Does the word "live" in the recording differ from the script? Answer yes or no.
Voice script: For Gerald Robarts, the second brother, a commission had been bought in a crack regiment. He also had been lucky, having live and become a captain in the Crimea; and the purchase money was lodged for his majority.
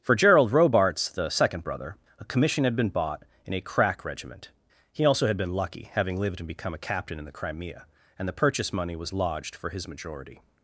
yes